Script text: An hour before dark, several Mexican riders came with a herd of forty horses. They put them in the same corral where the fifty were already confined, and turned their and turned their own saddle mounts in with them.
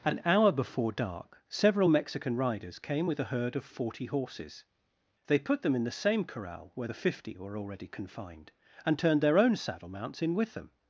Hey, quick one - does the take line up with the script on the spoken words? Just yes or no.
no